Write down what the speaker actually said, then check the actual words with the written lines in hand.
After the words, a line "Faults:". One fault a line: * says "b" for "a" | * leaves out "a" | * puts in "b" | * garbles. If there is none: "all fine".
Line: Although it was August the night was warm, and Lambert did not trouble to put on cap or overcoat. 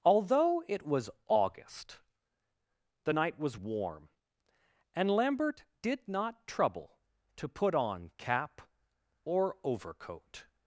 Although it was August the night was warm, and Lambert did not trouble to put on cap or overcoat.
Faults:
all fine